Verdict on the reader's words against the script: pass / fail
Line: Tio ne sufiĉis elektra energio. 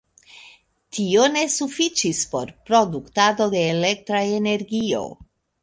fail